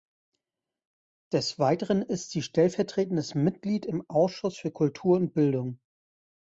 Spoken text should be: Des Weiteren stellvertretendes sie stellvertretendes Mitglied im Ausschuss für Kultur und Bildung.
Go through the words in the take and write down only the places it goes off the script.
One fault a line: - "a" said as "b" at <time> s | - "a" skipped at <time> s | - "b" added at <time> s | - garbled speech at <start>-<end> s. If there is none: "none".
- "stellvertretendes" said as "ist" at 2.0 s